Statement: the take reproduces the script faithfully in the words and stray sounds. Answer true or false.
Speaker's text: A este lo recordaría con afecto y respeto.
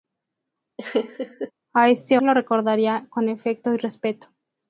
false